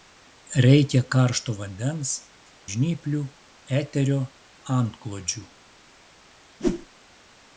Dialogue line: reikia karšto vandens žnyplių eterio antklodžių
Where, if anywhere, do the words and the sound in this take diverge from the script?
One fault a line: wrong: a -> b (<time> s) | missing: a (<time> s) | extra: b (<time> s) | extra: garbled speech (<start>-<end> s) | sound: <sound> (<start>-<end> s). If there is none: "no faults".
sound: whoosh (6.6-6.9 s)